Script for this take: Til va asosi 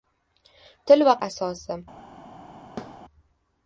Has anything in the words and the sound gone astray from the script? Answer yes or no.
yes